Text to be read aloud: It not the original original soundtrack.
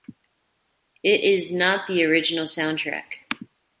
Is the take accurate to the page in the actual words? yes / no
no